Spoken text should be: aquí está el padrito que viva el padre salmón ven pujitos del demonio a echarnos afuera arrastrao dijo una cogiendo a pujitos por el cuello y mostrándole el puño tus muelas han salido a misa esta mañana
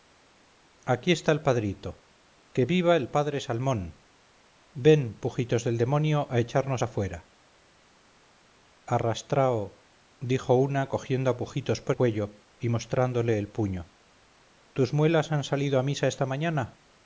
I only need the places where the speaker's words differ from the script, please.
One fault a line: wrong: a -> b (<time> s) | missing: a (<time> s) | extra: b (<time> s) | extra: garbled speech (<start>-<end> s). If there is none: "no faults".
missing: el (12.0 s)